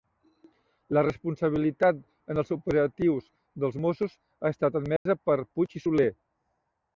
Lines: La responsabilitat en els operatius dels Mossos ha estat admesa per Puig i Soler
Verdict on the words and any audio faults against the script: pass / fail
fail